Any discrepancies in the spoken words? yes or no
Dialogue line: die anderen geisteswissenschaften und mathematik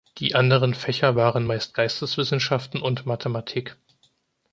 yes